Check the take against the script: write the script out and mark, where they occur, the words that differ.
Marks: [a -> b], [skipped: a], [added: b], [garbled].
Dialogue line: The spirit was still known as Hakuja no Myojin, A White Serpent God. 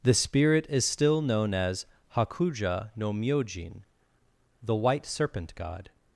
The spirit [was -> is] still known as Hakuja no Myojin, [A -> The] White Serpent God.